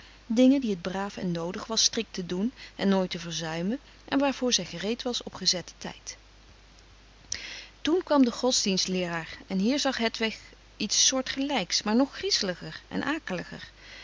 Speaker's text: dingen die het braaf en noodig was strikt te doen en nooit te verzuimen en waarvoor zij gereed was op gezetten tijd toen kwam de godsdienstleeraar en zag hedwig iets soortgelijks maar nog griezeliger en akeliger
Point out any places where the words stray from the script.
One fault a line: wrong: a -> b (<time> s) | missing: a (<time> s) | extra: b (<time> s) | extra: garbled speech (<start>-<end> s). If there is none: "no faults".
extra: hier (9.6 s)